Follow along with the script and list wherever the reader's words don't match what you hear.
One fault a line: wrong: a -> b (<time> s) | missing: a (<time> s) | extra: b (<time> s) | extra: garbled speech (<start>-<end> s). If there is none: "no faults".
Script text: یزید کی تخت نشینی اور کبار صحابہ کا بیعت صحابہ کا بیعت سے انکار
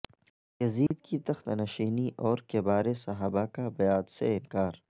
missing: صحابہ کا بیعت (4.1 s)